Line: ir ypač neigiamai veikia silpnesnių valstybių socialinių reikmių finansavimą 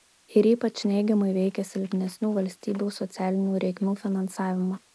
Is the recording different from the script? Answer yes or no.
no